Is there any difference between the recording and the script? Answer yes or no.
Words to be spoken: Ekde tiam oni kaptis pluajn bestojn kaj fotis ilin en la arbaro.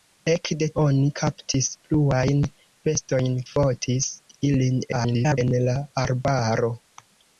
yes